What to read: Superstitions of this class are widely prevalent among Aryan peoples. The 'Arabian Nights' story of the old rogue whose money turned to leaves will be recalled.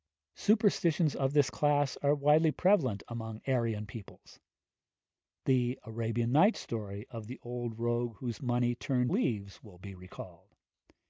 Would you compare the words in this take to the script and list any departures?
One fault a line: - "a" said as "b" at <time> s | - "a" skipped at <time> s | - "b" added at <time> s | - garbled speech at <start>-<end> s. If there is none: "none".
- "to" skipped at 9.1 s